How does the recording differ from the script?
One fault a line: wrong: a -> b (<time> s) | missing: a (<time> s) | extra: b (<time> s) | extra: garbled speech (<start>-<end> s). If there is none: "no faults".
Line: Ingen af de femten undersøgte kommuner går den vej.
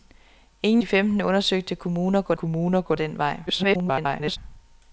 missing: af (0.8 s)
extra: kommuner går (2.3 s)
extra: garbled speech (3.5-4.4 s)